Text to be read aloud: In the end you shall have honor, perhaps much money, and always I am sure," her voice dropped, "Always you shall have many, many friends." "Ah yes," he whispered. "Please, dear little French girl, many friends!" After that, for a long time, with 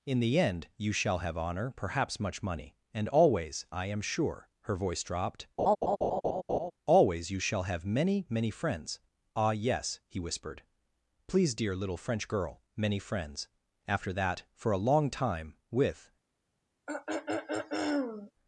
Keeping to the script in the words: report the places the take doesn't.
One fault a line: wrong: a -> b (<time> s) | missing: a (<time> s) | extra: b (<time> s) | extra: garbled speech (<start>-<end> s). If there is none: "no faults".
no faults